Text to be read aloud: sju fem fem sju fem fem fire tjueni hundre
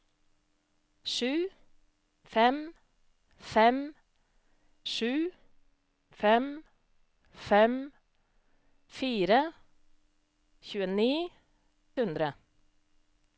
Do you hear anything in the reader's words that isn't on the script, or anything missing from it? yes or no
no